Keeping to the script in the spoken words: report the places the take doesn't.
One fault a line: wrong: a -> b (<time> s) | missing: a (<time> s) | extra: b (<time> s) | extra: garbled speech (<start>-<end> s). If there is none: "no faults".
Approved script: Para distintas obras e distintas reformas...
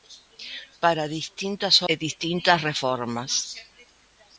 missing: obras (1.8 s)